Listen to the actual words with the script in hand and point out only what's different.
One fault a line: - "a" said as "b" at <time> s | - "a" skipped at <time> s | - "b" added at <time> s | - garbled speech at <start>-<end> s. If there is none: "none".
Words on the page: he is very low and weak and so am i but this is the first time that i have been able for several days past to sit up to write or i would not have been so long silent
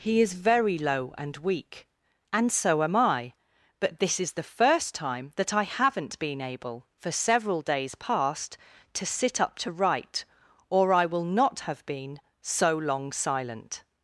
- "have" said as "haven't" at 5.6 s
- "would" said as "will" at 11.1 s